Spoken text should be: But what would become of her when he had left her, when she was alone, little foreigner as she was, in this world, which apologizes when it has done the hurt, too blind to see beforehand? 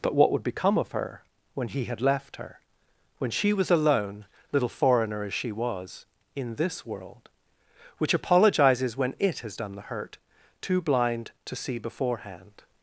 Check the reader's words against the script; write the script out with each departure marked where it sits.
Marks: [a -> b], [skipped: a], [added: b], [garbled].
But what would become of her when he had left her, when she was alone, little foreigner as she was, in this world, which apologizes when it has done the hurt, too blind to see beforehand?